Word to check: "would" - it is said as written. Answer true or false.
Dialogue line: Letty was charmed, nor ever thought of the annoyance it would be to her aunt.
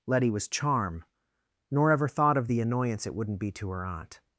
false